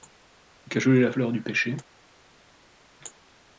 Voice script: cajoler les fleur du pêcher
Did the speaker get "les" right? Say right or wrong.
wrong